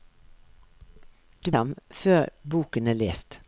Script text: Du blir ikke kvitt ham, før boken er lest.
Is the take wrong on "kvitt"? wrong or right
wrong